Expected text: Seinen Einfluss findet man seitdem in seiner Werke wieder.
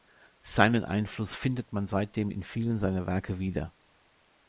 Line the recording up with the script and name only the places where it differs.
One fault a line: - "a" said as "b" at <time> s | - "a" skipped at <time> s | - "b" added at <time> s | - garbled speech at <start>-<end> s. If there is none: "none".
- "vielen" added at 2.4 s